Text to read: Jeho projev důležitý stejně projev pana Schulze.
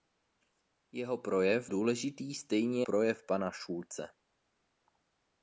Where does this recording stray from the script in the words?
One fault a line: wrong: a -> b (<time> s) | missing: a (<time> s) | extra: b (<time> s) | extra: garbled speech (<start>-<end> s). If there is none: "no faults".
no faults